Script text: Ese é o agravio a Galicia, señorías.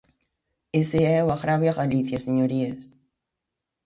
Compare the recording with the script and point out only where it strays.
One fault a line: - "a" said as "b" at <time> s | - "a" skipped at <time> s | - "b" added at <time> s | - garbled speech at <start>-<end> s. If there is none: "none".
none